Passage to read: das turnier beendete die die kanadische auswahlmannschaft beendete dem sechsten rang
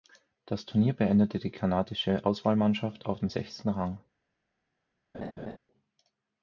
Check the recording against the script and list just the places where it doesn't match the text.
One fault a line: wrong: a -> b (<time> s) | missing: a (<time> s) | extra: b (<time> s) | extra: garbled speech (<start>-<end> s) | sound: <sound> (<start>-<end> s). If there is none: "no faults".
missing: die (1.5 s)
wrong: beendete -> auf (3.0 s)
sound: laugh (5.1-5.6 s)